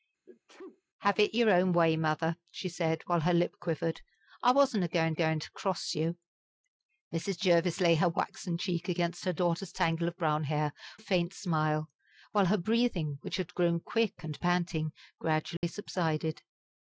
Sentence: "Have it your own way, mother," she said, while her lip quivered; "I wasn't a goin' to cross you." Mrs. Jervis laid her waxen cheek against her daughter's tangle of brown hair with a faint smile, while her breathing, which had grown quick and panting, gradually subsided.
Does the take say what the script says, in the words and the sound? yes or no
no